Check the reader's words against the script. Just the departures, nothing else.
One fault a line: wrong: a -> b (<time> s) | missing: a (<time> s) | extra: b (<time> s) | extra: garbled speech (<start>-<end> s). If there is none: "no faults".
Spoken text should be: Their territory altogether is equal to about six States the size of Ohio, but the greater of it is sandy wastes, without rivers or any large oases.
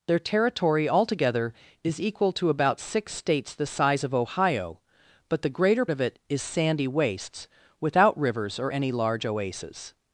no faults